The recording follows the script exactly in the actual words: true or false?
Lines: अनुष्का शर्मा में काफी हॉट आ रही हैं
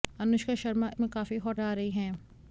true